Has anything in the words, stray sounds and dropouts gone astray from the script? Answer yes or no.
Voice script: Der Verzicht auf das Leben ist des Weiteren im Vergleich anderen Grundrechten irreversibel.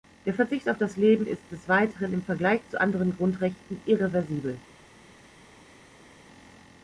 yes